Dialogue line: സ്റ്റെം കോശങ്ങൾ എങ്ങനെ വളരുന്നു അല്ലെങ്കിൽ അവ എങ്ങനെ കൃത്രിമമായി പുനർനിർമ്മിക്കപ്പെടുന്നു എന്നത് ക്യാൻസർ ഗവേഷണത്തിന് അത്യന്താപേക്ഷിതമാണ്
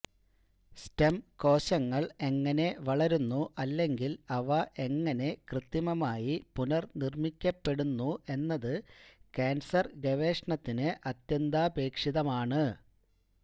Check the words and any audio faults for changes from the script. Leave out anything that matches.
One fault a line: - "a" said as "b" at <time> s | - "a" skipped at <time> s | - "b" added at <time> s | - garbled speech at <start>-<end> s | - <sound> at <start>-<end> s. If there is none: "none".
none